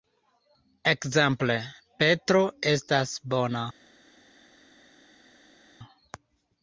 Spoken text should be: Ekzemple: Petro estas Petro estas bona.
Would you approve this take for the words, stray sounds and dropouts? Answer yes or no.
no